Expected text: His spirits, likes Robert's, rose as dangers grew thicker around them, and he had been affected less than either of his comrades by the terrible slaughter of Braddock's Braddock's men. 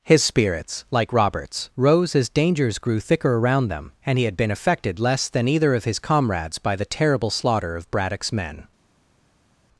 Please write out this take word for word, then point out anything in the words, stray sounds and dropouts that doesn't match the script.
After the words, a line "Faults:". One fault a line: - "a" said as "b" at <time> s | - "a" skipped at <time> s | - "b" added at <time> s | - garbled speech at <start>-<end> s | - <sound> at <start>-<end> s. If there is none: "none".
His spirits, like Robert's, rose as dangers grew thicker around them, and he had been affected less than either of his comrades by the terrible slaughter of Braddock's men.
Faults:
- "likes" said as "like" at 0.9 s
- "Braddock's" skipped at 8.3 s